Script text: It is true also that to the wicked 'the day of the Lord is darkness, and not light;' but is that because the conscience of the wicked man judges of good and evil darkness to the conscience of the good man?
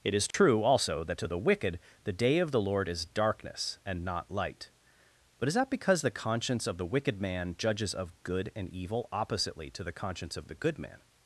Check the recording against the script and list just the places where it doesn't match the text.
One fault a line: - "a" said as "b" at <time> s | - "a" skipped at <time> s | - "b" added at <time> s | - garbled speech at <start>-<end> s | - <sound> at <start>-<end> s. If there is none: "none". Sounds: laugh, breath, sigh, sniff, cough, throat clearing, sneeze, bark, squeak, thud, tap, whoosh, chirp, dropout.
- dropout at 0.3-0.3 s
- "darkness" said as "oppositely" at 9.1 s